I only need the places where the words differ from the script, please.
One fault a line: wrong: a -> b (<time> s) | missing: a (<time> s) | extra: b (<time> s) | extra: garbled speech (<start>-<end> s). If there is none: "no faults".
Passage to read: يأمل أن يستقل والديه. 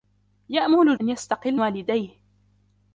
no faults